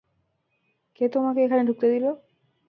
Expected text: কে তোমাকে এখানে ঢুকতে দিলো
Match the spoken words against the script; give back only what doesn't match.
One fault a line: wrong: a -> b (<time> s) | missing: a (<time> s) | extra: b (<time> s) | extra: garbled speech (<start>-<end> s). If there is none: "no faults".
no faults